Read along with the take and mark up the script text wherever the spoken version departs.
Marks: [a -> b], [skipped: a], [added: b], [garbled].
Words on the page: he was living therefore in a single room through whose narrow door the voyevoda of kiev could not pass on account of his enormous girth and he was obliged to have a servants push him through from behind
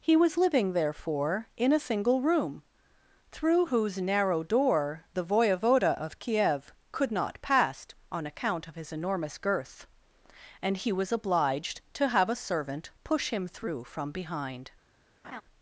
he was living therefore in a single room through whose narrow door the voyevoda of kiev could not pass on account of his enormous girth and he was obliged to have a [servants -> servant] push him through from behind